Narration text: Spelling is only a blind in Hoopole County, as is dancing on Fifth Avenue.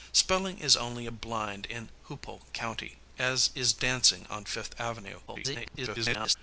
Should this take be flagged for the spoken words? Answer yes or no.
yes